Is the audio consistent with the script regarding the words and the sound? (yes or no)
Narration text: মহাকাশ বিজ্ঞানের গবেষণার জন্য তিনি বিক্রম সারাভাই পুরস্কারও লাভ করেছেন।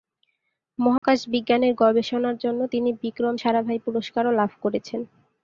no